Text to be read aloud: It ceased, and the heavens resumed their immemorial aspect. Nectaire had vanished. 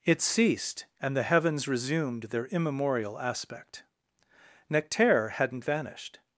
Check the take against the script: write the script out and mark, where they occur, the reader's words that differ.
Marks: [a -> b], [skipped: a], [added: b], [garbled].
It ceased, and the heavens resumed their immemorial aspect. Nectaire [had -> hadn't] vanished.